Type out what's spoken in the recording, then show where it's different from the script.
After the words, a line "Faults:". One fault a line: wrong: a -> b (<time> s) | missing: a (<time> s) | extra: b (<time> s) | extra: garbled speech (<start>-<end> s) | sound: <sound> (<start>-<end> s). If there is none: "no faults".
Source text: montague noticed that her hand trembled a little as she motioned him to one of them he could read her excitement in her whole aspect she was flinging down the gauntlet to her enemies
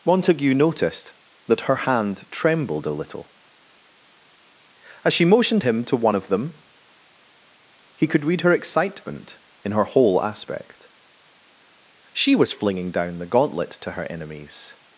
montague noticed that her hand trembled a little as she motioned him to one of them he could read her excitement in her whole aspect she was flinging down the gauntlet to her enemies
Faults:
no faults